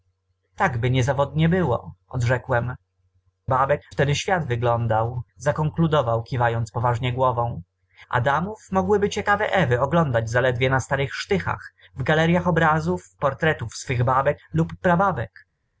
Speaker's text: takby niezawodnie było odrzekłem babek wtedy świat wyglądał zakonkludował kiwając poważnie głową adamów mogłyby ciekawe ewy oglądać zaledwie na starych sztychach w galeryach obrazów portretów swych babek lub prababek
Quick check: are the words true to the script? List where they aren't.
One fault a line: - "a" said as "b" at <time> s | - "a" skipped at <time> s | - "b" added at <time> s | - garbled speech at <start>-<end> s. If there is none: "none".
none